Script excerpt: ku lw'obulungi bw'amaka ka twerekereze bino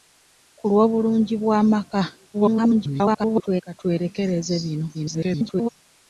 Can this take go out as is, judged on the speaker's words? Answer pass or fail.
fail